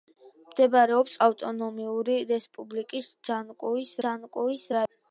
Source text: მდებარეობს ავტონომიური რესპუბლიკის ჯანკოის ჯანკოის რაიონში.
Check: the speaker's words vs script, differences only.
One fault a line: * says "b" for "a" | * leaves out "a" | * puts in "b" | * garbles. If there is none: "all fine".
all fine